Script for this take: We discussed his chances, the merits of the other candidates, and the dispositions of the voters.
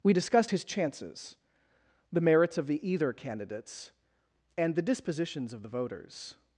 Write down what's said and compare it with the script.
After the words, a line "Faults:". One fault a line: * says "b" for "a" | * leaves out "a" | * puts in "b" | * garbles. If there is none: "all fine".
We discussed his chances, the merits of the either candidates, and the dispositions of the voters.
Faults:
* says "either" for "other"